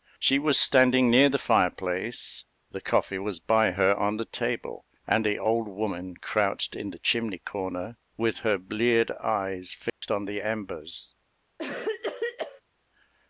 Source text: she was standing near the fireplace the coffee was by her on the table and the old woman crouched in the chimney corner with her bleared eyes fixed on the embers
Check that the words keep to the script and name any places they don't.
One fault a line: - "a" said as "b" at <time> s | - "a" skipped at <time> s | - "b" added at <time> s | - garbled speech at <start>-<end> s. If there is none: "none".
none